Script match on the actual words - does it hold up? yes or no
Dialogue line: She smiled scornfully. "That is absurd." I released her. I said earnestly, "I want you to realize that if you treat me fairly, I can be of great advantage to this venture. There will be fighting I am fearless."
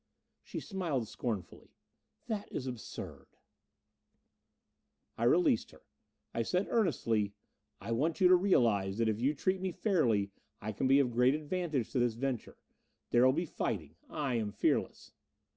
yes